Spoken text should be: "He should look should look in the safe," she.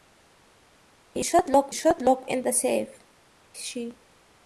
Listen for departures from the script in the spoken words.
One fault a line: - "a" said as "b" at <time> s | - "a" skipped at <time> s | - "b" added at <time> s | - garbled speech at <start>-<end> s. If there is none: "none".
none